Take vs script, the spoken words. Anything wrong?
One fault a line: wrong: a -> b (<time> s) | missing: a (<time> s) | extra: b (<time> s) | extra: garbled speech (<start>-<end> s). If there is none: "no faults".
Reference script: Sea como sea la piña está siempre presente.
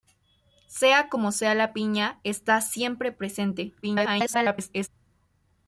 extra: garbled speech (3.8-4.9 s)